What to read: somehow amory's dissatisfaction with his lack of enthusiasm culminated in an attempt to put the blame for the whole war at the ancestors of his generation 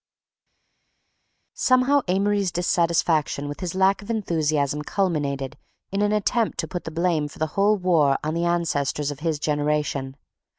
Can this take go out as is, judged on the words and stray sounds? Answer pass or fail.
fail